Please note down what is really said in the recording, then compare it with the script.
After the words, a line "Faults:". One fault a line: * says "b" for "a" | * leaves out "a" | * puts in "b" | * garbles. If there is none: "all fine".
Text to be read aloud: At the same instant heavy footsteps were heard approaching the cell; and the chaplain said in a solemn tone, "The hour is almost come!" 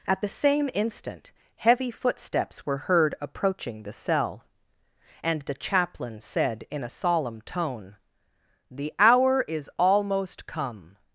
At the same instant heavy footsteps were heard approaching the cell; and the chaplain said in a solemn tone, "The hour is almost come!"
Faults:
all fine